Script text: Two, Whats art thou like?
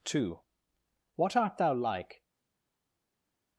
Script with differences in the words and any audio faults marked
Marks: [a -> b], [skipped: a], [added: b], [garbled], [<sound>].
Two, [Whats -> What] art thou like?